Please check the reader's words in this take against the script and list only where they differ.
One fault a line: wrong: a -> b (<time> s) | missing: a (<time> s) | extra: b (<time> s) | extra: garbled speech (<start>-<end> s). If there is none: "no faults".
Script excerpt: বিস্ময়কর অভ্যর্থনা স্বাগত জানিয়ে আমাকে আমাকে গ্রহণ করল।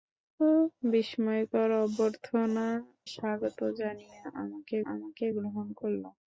no faults